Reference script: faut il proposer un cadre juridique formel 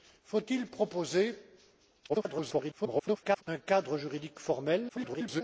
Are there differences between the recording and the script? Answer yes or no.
yes